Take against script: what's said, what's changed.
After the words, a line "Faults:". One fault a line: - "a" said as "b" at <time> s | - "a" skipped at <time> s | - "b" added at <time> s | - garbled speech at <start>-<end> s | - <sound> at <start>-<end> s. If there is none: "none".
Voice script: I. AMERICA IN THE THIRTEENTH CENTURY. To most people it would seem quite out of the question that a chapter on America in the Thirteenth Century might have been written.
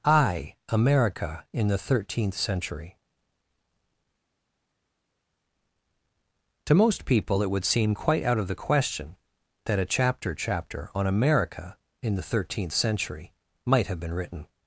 I. AMERICA IN THE THIRTEENTH CENTURY. To most people it would seem quite out of the question that a chapter chapter on America in the Thirteenth Century might have been written.
Faults:
- "chapter" added at 10.3 s